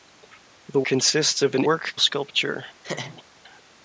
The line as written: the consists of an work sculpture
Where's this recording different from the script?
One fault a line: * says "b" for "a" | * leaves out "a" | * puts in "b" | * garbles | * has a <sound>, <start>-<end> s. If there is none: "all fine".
* has a laugh, 2.8-3.2 s